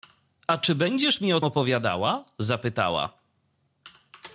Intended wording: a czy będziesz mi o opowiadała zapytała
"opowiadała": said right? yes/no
yes